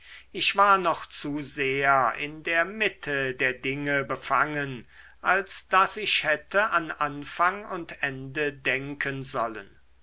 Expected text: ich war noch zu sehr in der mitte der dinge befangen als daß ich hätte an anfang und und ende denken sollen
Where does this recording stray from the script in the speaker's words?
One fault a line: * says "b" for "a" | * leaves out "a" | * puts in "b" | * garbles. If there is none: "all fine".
* leaves out "und"